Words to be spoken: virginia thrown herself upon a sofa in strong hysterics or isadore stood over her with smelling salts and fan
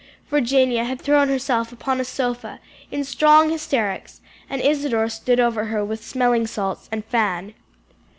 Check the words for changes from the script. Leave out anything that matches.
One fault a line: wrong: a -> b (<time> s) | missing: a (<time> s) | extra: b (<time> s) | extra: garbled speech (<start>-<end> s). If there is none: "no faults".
extra: had (0.8 s)
wrong: or -> and (4.5 s)